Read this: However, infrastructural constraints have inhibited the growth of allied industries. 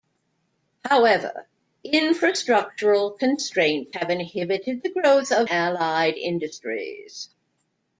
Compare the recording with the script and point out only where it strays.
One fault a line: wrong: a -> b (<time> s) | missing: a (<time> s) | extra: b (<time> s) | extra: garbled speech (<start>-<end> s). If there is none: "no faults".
no faults